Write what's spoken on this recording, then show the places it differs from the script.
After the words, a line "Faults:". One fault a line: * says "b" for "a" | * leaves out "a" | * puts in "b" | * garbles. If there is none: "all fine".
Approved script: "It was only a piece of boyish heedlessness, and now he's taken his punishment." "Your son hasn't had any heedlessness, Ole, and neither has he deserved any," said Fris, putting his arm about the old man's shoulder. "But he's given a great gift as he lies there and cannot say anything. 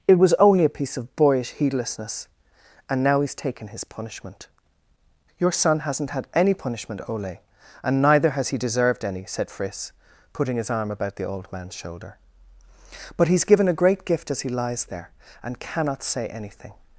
"It was only a piece of boyish heedlessness, and now he's taken his punishment." "Your son hasn't had any punishment, Ole, and neither has he deserved any," said Fris, putting his arm about the old man's shoulder. "But he's given a great gift as he lies there and cannot say anything.
Faults:
* says "punishment" for "heedlessness"